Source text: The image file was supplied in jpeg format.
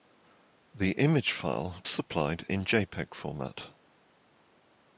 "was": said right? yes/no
no